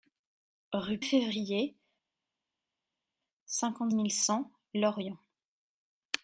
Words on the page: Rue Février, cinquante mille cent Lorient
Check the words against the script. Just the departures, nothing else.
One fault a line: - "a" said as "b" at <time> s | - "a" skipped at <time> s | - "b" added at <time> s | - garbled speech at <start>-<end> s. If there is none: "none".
none